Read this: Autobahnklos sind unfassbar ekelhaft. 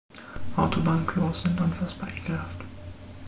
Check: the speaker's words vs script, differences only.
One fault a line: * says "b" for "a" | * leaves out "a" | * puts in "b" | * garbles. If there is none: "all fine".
all fine